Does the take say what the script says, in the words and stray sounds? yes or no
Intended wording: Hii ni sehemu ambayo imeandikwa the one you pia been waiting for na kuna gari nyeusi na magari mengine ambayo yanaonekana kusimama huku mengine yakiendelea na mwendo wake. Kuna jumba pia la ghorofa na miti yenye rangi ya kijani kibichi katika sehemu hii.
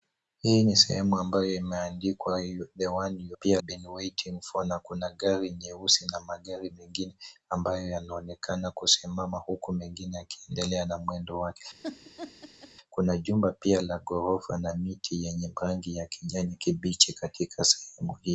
no